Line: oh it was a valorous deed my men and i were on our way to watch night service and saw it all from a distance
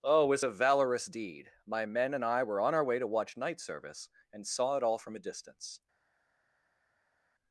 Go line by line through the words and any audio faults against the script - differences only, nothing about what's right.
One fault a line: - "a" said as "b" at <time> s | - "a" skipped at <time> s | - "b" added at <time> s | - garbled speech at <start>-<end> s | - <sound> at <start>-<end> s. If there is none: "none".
none